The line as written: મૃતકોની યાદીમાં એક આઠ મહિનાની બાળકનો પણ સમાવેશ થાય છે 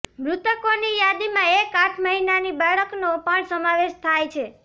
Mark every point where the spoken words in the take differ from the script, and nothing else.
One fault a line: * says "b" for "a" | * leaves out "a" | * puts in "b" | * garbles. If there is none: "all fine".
all fine